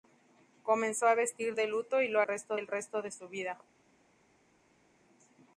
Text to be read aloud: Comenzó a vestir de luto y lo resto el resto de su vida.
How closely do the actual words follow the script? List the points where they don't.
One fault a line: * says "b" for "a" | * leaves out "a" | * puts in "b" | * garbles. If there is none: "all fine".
all fine